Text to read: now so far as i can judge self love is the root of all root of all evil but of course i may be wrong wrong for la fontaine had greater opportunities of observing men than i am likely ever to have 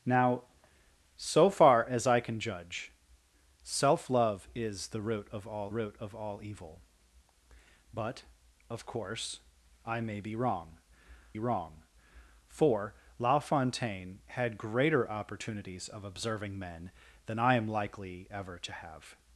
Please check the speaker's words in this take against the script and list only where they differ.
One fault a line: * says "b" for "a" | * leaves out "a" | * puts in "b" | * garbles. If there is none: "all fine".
all fine